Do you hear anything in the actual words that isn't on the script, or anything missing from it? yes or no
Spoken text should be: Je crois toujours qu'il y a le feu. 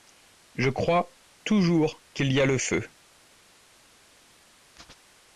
no